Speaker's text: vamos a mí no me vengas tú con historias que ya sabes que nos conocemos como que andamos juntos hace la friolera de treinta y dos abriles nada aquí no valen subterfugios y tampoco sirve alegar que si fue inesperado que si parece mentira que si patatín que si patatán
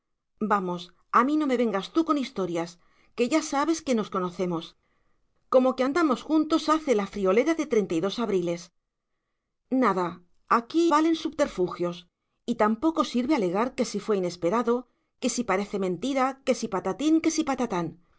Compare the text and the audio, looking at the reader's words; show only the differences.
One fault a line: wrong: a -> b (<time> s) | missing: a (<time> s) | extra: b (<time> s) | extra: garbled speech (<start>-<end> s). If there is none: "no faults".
missing: no (10.9 s)